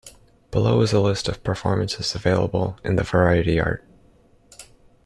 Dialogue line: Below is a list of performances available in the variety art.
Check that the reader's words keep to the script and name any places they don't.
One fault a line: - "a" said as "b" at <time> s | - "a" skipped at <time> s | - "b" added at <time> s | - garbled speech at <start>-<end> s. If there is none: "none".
none